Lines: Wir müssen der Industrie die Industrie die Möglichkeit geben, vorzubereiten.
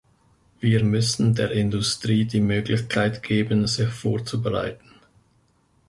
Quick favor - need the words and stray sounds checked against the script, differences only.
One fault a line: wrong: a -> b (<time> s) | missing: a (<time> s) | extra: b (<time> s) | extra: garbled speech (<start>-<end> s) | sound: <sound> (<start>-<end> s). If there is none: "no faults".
missing: Industrie die (2.4 s)
extra: sich (3.7 s)